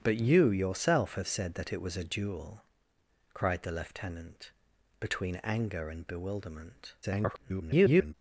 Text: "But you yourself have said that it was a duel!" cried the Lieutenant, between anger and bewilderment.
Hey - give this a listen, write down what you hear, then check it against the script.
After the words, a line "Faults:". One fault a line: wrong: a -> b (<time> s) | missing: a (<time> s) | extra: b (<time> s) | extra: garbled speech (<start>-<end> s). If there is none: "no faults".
"But you yourself have said that it was a duel!" cried the Lieutenant, between anger and bewilderment. [garbled]
Faults:
extra: garbled speech (7.0-8.1 s)